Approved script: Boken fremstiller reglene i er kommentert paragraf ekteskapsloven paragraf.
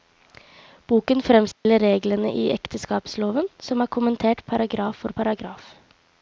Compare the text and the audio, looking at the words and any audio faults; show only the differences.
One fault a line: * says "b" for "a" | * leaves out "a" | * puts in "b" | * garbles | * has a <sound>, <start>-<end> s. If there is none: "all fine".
* has a dropout, 1.5-1.7 s
* puts in "ekteskapsloven som"
* says "for" for "ekteskapsloven"